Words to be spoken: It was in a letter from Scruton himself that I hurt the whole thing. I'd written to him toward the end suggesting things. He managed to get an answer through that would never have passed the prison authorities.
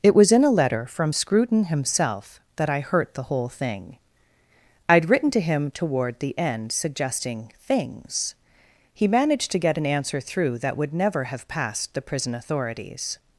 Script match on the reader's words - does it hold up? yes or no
yes